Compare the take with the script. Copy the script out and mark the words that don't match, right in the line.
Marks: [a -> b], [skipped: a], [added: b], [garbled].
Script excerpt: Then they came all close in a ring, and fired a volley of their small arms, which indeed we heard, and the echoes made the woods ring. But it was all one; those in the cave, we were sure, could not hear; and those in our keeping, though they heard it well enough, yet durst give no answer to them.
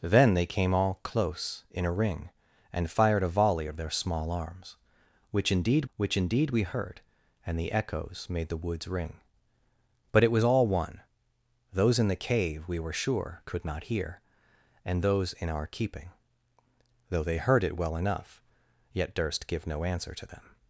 Then they came all close in a ring, and fired a volley of their small arms, which indeed [added: which indeed] we heard, and the echoes made the woods ring. But it was all one; those in the cave, we were sure, could not hear; and those in our keeping, though they heard it well enough, yet durst give no answer to them.